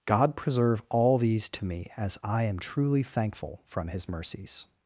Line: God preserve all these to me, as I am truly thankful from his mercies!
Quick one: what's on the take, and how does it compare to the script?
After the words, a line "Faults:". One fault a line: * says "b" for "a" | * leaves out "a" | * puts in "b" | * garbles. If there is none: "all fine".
God preserve all these to me, as I am truly thankful from his mercies!
Faults:
all fine